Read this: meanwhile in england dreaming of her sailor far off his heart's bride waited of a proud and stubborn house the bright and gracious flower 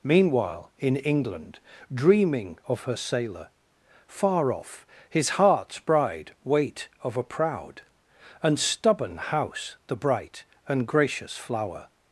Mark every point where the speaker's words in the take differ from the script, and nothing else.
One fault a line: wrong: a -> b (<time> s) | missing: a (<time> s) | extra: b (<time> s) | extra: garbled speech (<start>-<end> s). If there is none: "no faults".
wrong: waited -> wait (6.4 s)